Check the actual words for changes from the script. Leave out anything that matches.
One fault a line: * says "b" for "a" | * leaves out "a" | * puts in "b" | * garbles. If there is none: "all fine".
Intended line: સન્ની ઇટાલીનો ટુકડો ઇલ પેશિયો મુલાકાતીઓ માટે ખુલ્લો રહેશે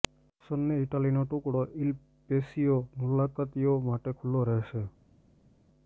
all fine